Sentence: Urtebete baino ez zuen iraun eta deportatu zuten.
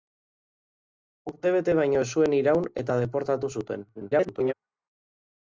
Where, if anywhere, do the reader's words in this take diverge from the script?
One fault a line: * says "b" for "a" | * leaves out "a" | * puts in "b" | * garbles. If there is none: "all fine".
* garbles